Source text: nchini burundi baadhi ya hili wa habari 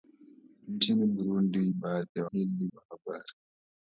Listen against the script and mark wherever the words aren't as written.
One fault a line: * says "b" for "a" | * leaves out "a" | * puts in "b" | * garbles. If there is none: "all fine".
all fine